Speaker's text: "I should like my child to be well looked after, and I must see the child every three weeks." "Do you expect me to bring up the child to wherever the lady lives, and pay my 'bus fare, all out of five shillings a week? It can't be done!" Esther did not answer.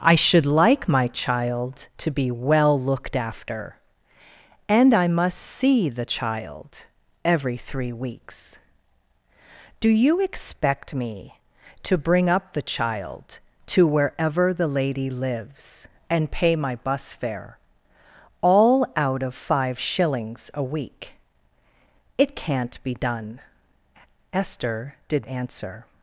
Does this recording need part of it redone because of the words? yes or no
yes